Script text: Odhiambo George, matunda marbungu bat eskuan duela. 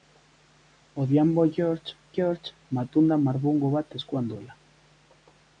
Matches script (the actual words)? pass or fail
fail